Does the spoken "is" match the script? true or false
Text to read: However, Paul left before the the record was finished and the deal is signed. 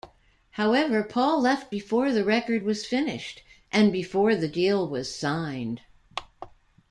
false